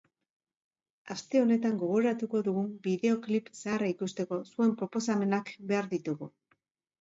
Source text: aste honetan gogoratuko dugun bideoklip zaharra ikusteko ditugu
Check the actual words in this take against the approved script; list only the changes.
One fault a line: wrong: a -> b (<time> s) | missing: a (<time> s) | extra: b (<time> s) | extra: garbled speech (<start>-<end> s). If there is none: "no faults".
extra: zuen proposamenak behar (4.5 s)